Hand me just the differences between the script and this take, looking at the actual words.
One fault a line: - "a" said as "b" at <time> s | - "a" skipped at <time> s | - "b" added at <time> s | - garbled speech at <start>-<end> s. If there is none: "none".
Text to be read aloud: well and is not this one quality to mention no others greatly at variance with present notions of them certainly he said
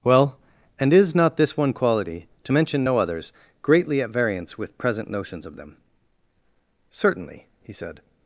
none